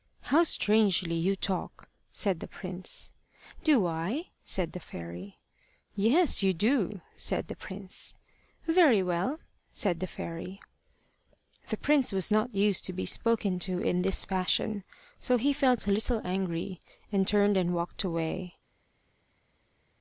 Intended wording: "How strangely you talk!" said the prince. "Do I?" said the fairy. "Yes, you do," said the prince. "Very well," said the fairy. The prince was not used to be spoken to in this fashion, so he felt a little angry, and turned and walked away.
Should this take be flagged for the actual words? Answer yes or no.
no